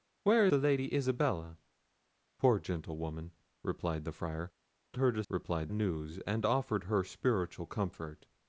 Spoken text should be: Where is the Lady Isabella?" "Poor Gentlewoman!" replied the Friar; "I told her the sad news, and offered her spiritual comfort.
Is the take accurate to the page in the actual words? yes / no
no